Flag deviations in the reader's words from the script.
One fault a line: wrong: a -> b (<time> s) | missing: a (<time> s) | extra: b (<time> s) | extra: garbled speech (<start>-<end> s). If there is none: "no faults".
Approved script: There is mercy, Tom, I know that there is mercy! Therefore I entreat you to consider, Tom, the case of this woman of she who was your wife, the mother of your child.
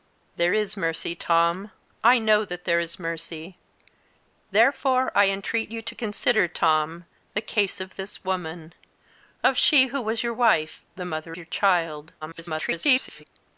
missing: of (11.4 s)
extra: garbled speech (12.2-13.2 s)